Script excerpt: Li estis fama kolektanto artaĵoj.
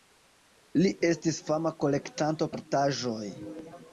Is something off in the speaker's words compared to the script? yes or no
no